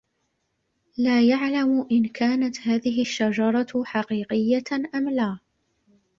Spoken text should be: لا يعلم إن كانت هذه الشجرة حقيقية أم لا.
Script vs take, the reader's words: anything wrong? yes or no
no